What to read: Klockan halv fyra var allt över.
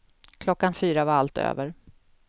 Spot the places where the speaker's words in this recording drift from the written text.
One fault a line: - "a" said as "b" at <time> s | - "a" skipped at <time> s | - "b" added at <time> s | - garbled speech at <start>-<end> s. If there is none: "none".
- "halv" skipped at 0.7 s